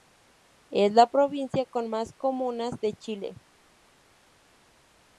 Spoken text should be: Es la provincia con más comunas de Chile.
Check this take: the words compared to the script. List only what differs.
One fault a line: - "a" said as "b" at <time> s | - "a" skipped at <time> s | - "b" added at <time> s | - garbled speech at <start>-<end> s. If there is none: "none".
none